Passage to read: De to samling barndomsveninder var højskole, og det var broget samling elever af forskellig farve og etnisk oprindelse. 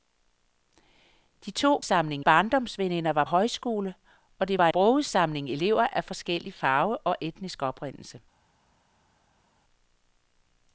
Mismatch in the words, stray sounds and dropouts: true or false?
false